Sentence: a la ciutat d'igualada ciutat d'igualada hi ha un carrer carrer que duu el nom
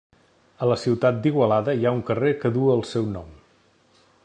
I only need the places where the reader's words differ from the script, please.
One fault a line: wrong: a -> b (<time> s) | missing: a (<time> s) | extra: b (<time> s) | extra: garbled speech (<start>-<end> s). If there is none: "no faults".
missing: ciutat d'igualada (1.8 s)
missing: carrer (2.3 s)
extra: seu (2.9 s)